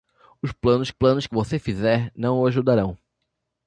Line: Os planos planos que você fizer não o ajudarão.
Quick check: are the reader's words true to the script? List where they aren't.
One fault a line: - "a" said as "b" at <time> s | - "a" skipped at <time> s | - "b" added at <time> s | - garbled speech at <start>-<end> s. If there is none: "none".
none